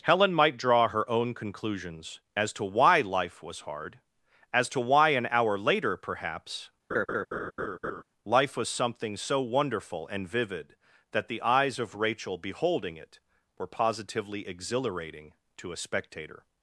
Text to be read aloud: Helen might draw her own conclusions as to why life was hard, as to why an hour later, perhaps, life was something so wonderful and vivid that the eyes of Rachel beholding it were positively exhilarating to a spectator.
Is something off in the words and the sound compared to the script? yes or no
yes